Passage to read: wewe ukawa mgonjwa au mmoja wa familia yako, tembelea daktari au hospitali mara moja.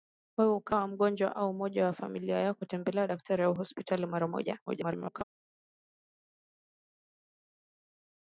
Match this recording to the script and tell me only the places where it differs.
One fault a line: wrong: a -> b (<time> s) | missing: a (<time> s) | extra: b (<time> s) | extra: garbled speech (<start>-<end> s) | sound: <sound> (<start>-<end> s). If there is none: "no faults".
extra: garbled speech (4.7-5.2 s)